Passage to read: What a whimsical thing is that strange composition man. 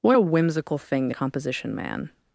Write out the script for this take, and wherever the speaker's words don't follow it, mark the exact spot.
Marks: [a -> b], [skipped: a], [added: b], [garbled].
What a whimsical thing [skipped: is that strange] composition man.